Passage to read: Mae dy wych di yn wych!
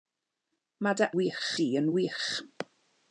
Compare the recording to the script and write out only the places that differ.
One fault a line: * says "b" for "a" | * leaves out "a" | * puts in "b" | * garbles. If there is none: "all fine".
all fine